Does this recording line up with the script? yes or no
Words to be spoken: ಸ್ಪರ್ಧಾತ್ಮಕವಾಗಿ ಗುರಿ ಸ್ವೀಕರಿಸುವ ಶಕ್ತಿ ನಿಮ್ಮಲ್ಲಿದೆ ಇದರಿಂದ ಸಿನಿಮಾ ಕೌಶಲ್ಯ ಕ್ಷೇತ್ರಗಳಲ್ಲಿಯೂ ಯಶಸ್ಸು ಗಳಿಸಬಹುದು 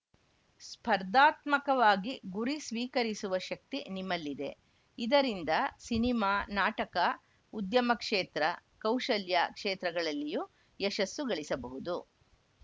no